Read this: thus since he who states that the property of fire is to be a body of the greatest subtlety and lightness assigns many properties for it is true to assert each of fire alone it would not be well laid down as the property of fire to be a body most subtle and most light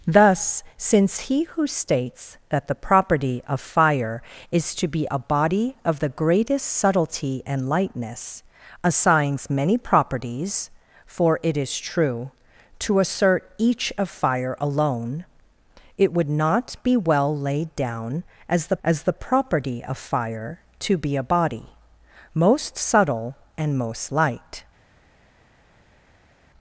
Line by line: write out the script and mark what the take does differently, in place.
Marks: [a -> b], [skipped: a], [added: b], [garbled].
thus since he who states that the property of fire is to be a body of the greatest subtlety and lightness assigns many properties for it is true to assert each of fire alone it would not be well laid down as the [added: as the] property of fire to be a body most subtle and most light